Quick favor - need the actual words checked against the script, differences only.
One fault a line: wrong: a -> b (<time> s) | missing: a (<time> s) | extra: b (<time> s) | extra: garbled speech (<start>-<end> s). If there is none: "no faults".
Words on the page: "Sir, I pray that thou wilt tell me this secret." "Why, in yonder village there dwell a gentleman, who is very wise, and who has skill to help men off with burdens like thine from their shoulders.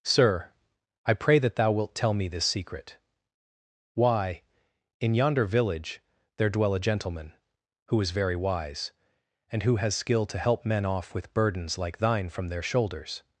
no faults